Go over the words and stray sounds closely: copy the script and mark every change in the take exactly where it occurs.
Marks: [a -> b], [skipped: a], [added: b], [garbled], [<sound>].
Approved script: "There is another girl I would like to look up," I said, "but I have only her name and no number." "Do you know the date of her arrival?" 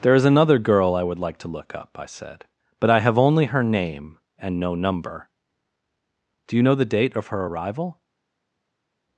"There is another girl I would like to look up," I said, "but I have only her name and no number." "Do you know the date of her arrival?"